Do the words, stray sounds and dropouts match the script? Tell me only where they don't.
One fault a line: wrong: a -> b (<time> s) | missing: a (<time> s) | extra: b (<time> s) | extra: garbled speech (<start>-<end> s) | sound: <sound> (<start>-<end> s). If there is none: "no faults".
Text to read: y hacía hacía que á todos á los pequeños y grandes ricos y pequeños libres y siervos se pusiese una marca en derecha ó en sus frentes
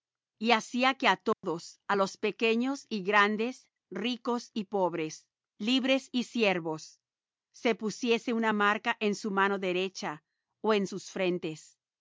missing: hacía (0.9 s)
sound: dropout (1.3-1.4 s)
wrong: pequeños -> pobres (4.6 s)
extra: su mano (9.2 s)